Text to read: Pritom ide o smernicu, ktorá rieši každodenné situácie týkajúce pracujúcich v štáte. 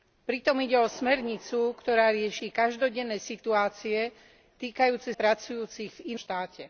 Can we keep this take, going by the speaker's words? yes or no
yes